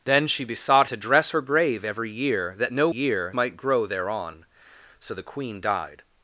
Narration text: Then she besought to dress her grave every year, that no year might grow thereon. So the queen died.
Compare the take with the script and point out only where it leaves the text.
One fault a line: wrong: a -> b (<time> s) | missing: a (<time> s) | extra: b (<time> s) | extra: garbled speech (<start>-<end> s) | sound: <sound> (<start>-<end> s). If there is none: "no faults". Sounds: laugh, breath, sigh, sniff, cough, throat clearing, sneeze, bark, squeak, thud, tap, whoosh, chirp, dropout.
no faults